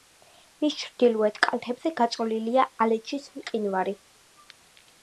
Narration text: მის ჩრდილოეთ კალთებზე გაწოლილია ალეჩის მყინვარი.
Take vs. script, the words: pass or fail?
pass